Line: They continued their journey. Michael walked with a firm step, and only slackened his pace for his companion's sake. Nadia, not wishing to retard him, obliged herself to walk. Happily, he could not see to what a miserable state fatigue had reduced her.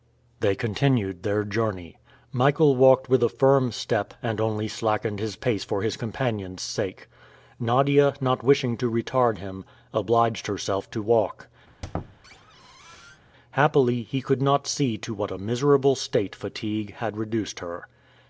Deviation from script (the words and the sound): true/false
true